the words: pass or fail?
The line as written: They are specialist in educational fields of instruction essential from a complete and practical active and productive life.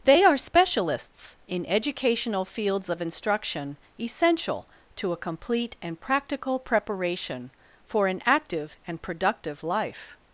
fail